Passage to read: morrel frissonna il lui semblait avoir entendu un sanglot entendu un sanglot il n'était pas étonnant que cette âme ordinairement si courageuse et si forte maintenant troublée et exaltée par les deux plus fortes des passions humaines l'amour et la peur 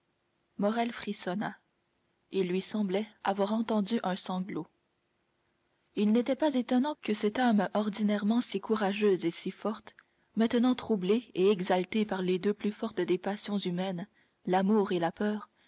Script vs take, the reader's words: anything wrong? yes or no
yes